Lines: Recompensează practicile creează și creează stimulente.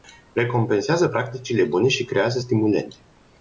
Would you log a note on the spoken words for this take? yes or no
yes